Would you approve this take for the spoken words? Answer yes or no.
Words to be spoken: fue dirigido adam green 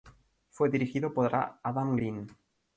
no